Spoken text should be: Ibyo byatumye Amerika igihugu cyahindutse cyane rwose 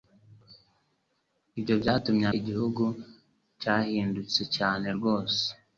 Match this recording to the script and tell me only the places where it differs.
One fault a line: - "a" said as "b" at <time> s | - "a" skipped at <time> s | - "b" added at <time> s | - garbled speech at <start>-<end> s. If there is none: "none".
- "Amerika" skipped at 2.2 s